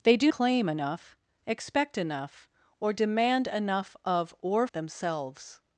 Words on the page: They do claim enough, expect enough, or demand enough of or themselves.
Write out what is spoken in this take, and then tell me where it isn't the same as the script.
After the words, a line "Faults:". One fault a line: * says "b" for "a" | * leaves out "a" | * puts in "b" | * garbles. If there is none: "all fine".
They do claim enough, expect enough, or demand enough of or themselves.
Faults:
all fine